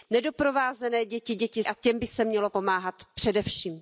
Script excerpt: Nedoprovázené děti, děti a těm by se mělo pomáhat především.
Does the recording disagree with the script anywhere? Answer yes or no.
no